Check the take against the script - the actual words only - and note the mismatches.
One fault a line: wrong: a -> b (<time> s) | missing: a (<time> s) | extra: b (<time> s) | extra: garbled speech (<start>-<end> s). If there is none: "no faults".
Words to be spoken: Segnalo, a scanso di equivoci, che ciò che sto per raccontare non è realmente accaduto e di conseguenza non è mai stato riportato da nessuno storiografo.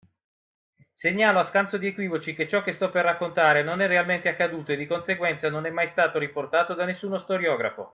no faults